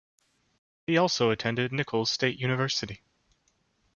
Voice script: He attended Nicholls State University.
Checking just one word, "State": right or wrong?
right